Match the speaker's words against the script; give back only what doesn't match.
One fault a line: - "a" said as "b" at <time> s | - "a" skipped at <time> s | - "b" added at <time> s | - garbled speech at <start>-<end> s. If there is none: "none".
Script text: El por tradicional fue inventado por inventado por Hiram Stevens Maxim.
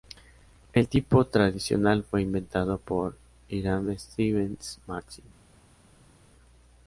- "por" said as "tipo" at 0.9 s
- "inventado por" skipped at 3.1 s